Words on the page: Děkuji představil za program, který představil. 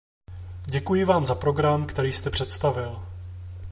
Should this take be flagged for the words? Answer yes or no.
yes